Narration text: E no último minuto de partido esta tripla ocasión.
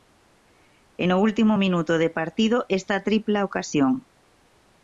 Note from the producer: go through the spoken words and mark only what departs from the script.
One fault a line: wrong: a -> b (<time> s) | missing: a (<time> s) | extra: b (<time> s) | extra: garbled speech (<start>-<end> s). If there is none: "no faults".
no faults